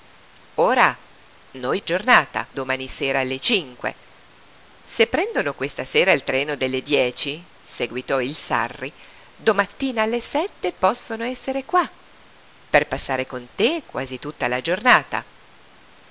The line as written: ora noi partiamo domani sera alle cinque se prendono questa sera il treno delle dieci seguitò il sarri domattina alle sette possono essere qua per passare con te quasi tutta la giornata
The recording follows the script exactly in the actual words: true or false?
false